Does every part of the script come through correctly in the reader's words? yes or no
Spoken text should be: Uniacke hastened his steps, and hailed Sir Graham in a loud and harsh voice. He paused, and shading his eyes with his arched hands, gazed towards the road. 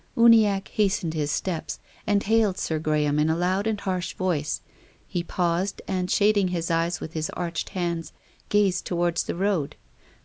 yes